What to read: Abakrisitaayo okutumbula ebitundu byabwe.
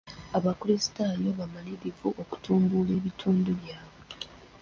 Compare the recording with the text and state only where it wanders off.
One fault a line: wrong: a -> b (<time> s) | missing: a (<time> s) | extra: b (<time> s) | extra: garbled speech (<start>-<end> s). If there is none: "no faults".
extra: bamalirivu (1.4 s)